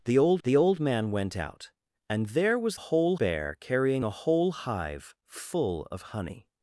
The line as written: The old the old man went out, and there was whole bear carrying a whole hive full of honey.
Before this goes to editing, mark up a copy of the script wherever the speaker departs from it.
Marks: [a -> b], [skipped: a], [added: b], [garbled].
The old the old man went out, and there was whole bear carrying a whole hive full of honey.